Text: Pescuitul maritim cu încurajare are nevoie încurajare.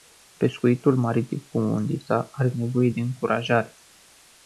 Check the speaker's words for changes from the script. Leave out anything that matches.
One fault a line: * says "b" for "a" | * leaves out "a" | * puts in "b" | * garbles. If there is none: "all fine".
* says "undița" for "încurajare"
* puts in "de"